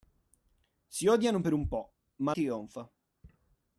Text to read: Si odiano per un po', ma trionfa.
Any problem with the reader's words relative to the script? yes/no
no